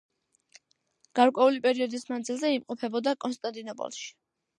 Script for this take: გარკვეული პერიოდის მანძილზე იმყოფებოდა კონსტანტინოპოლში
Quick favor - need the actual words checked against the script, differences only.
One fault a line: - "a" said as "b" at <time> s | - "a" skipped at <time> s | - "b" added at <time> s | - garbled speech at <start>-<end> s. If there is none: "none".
none